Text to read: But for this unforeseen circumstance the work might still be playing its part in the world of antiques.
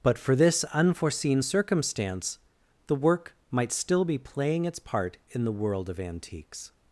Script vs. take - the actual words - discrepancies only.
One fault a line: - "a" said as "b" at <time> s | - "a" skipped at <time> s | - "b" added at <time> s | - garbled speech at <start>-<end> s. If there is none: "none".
none